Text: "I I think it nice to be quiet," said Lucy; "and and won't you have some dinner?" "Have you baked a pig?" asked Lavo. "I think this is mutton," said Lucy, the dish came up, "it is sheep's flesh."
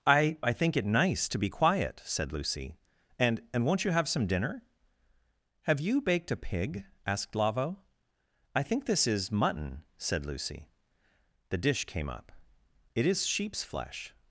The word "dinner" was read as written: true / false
true